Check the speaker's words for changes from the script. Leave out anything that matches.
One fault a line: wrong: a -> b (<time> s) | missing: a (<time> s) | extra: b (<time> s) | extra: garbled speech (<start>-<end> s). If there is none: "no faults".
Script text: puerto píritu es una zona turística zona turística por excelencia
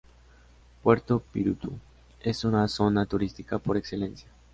missing: zona turística (3.6 s)